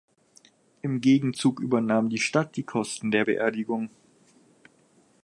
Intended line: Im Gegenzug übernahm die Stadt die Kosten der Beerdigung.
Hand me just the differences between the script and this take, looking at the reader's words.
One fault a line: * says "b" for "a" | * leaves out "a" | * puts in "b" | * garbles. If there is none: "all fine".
all fine